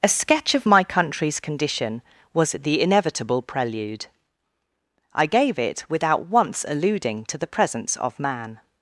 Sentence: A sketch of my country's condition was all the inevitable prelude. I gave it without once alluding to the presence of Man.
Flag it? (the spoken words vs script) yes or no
yes